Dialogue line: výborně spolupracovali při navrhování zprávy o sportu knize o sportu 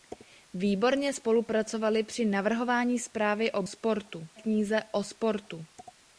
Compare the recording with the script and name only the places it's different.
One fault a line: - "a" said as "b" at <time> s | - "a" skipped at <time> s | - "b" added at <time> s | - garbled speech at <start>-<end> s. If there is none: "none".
none